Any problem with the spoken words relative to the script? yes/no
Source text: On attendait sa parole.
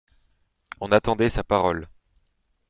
no